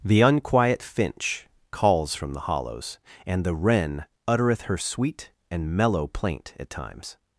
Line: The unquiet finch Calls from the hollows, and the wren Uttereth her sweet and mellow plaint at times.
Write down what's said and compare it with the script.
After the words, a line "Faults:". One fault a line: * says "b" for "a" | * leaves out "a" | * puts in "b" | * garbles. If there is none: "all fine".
The unquiet finch Calls from the hollows, and the wren Uttereth her sweet and mellow plaint at times.
Faults:
all fine